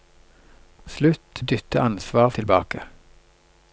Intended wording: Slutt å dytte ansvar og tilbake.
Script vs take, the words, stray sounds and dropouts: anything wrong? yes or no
no